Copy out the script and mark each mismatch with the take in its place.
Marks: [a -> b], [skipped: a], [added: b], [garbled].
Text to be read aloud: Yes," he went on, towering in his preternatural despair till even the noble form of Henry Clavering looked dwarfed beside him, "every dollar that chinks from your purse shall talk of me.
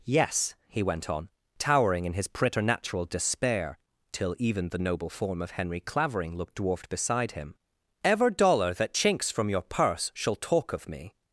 Yes," he went on, towering in his preternatural despair till even the noble form of Henry Clavering looked dwarfed beside him, ["every -> ever] dollar that chinks from your purse shall talk of me.